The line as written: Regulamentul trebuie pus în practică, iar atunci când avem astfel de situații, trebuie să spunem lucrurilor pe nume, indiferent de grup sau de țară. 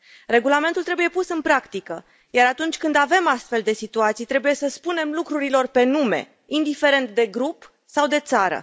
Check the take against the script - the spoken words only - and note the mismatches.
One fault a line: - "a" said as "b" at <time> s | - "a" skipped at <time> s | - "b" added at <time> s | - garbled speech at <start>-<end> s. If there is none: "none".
none